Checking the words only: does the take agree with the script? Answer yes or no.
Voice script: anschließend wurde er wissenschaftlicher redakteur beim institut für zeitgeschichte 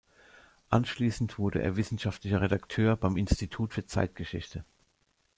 yes